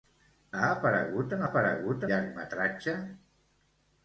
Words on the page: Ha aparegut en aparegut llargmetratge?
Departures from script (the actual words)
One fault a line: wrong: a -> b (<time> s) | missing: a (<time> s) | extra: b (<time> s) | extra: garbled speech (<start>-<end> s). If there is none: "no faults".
no faults